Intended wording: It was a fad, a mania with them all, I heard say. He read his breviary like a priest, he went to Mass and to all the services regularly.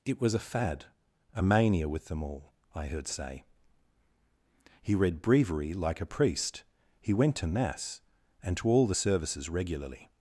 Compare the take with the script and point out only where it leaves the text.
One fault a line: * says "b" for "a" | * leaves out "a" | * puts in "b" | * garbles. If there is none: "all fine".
* leaves out "his"